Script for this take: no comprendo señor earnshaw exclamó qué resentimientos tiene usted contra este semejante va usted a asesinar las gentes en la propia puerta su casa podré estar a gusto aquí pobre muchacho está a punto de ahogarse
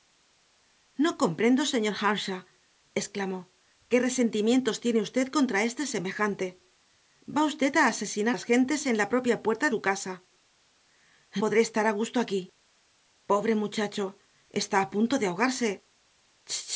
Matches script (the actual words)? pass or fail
pass